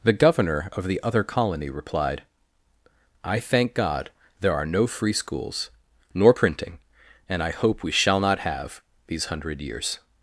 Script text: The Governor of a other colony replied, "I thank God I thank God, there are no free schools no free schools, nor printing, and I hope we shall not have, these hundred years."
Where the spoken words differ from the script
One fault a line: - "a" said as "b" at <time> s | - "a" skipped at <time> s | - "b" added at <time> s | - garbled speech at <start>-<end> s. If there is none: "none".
- "a" said as "the" at 0.8 s
- "I thank God" skipped at 4.1 s
- "no free schools" skipped at 5.7 s